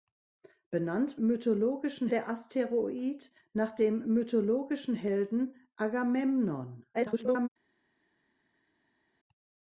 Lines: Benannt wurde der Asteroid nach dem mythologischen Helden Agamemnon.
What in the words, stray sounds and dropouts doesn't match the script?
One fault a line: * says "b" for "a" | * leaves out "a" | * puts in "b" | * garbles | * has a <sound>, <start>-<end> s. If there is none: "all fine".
* says "mythologischen" for "wurde"
* garbles